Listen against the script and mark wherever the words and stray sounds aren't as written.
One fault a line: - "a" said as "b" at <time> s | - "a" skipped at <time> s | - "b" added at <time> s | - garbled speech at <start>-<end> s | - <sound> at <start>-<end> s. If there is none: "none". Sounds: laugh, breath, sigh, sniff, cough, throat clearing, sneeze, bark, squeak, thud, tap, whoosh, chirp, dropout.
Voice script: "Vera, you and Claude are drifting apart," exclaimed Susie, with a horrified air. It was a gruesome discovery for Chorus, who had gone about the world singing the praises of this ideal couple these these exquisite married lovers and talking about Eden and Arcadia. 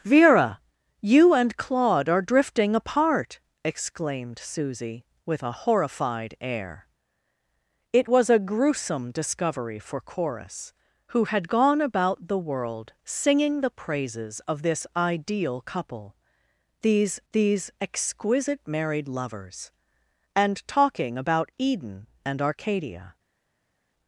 none